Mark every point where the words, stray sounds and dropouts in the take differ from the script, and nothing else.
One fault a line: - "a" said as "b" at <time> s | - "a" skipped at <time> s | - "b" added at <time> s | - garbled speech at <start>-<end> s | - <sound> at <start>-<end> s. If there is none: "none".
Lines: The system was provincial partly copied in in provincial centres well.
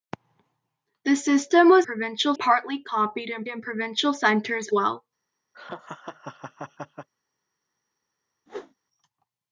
- laugh at 5.5-7.1 s
- whoosh at 8.5-8.7 s